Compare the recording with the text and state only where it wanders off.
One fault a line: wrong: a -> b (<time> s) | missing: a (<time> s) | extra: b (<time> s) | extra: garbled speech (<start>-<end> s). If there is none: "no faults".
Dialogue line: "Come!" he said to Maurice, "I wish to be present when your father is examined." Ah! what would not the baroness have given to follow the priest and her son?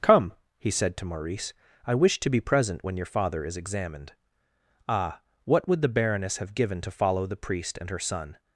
missing: not (5.8 s)